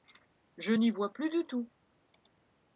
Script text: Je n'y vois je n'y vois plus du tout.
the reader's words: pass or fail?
fail